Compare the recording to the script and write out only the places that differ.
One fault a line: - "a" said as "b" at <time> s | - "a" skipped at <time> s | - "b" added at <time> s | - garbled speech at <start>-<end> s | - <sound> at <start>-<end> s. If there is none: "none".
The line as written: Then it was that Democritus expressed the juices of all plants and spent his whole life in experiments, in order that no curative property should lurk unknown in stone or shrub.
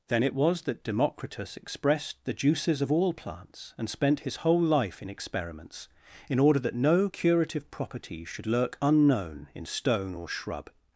none